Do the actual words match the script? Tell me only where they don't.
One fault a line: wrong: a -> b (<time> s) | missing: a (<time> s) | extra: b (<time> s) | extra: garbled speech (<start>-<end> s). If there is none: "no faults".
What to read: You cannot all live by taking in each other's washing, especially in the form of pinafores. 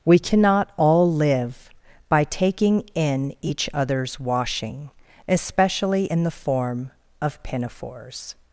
wrong: You -> We (0.0 s)